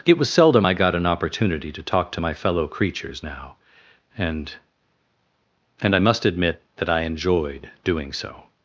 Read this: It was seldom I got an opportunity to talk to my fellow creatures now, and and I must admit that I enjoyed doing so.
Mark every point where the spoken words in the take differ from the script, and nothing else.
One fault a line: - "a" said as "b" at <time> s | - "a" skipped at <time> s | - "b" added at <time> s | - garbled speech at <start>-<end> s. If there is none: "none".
none